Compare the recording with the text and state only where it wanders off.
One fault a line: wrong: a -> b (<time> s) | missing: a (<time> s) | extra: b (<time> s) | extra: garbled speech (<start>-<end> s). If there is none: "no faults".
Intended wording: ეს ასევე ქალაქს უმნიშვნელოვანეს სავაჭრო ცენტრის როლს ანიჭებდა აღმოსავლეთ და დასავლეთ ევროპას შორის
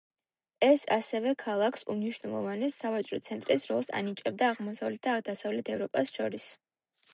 no faults